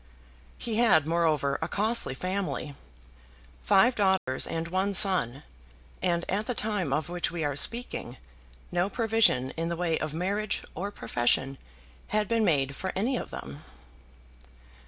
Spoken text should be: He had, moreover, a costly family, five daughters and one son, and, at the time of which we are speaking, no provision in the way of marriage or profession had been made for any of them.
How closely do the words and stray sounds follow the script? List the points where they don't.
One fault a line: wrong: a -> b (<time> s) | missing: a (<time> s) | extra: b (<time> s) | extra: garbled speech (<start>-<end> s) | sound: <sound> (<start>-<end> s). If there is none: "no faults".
sound: dropout (4.2-4.3 s)